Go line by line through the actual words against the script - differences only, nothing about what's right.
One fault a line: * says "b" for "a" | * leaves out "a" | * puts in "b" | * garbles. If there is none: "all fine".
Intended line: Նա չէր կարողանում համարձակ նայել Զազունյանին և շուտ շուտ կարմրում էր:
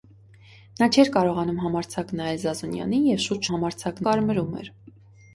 * says "համարձակ" for "շուտ"